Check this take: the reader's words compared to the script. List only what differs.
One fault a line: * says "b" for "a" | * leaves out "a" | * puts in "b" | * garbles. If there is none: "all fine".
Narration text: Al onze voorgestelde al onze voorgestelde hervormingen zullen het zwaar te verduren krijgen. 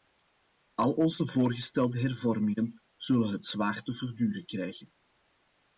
* leaves out "al onze voorgestelde"